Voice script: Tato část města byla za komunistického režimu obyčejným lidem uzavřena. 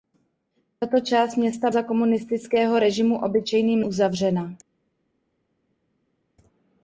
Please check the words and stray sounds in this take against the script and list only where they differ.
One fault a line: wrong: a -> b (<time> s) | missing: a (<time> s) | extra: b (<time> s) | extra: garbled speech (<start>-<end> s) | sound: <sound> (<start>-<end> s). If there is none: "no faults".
missing: byla (1.7 s)
missing: lidem (3.8 s)